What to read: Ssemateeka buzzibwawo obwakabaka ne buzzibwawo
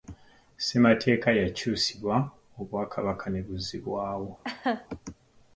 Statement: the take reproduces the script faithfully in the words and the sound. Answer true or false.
false